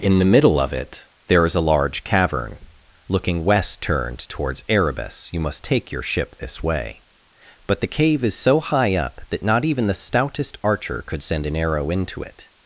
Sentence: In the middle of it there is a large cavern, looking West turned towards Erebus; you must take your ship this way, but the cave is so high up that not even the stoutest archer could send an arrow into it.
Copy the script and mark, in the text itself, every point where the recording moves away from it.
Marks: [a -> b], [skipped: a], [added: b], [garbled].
In the middle of it there is a large cavern, looking West turned towards Erebus; you must take your ship this way, but the cave is so high up that not even the stoutest archer could send an arrow into it.